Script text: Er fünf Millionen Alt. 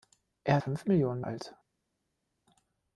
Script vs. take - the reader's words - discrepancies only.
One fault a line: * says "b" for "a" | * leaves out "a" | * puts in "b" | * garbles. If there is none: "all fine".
all fine